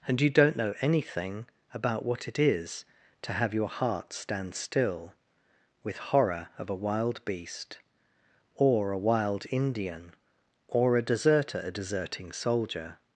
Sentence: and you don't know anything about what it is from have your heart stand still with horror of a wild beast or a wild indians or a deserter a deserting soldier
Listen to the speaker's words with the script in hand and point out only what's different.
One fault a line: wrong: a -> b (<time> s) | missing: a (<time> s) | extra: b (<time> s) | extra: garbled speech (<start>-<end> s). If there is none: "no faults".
wrong: from -> to (3.2 s)
wrong: indians -> indian (9.5 s)